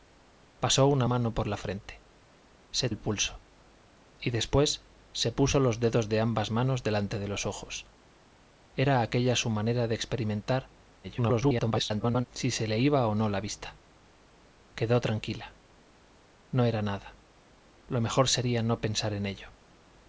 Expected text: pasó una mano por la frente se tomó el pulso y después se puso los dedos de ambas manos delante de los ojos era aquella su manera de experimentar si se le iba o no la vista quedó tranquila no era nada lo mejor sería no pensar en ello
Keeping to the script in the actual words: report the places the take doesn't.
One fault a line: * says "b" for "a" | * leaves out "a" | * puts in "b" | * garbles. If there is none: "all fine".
* leaves out "tomó"
* garbles